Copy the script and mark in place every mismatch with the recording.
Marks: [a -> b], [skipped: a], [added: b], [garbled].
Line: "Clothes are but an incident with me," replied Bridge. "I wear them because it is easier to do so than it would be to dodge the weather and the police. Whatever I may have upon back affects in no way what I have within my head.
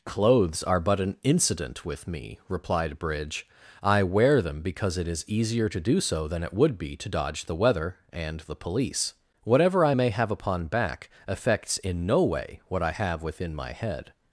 "Clothes are but an incident with me," replied Bridge. "I wear them because it is easier to do so than it would be to dodge the weather and the police. Whatever I may have upon back affects in no way what I have within my head.